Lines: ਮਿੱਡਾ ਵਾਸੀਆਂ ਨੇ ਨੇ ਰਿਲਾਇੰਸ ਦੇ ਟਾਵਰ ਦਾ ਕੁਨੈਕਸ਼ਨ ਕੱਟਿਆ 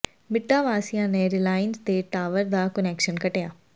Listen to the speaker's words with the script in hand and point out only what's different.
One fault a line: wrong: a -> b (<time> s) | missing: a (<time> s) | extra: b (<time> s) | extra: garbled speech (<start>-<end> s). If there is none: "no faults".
missing: ਨੇ (1.3 s)